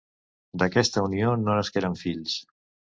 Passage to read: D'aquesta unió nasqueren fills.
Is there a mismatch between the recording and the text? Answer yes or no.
yes